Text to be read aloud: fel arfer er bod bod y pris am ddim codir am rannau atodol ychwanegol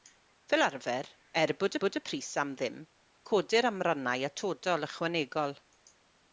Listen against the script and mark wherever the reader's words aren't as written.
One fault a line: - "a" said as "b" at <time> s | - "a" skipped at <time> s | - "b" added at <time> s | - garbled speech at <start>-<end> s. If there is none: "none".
none